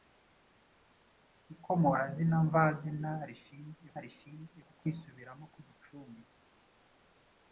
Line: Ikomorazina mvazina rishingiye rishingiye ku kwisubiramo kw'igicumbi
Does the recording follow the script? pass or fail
pass